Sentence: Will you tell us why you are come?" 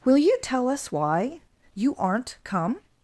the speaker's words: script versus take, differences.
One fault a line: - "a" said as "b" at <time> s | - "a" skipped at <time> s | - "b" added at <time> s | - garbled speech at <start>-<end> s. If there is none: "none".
- "are" said as "aren't" at 2.0 s